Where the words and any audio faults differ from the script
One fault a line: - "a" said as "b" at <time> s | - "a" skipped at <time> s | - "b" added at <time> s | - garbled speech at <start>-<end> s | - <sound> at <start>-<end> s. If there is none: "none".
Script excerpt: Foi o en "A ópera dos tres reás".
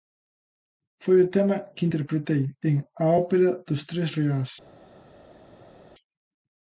- "tema que interpretei" added at 1.4 s